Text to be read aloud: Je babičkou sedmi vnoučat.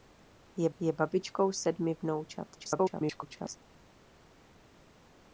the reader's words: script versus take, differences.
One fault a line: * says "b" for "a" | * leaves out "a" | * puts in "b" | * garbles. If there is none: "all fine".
* puts in "je"
* garbles